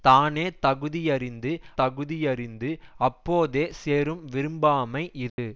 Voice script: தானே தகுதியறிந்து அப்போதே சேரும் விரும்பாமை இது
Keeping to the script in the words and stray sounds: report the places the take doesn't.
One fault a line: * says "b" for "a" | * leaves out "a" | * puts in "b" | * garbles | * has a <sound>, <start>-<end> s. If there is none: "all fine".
* puts in "தகுதியறிந்து"
* has a dropout, 5.3-5.4 s